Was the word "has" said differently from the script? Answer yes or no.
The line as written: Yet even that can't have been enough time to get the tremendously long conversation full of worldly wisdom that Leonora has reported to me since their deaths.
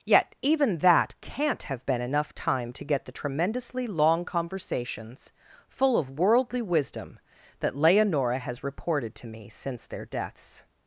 no